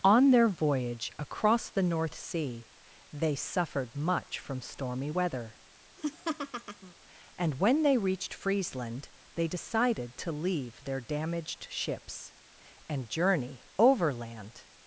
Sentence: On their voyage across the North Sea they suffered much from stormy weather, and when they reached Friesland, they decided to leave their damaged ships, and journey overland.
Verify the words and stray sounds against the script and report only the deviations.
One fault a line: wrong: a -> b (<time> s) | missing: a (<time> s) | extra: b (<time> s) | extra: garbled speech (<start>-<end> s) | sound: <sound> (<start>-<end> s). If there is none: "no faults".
sound: laugh (6.0-6.9 s)